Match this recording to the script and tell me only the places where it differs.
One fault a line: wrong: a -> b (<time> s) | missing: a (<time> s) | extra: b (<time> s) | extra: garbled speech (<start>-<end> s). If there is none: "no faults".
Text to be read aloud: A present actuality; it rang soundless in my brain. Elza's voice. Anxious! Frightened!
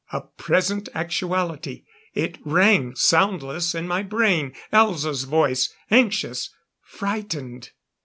no faults